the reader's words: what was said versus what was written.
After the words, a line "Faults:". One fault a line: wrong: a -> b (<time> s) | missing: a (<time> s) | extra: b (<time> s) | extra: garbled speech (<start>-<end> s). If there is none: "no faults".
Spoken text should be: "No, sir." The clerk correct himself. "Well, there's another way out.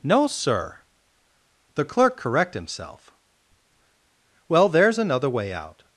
"No, sir." The clerk correct himself. "Well, there's another way out.
Faults:
no faults